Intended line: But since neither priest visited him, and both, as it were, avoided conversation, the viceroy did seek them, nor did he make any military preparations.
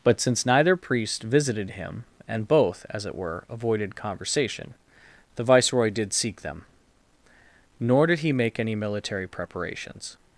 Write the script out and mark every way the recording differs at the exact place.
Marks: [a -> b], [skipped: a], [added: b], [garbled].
But since neither priest visited him, and both, as it were, avoided conversation, the viceroy did seek them, nor did he make any military preparations.